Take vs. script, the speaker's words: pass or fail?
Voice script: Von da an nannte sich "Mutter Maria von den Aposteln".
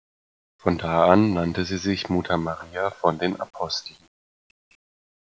fail